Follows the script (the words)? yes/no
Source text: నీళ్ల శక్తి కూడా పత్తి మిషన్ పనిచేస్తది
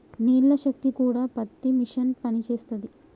yes